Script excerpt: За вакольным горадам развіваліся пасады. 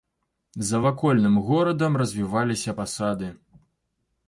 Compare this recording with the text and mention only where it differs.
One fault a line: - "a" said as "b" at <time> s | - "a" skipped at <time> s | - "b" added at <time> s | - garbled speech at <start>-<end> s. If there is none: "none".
none